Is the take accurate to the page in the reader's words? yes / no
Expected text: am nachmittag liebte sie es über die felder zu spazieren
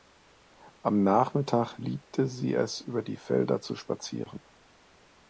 yes